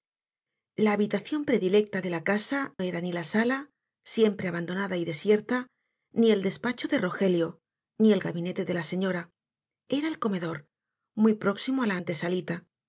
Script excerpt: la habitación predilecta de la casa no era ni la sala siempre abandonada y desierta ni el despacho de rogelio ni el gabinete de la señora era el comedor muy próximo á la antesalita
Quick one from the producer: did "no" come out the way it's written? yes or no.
no